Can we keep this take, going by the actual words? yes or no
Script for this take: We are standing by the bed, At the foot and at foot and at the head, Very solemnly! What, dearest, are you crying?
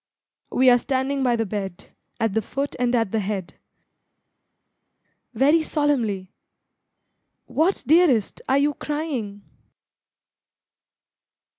no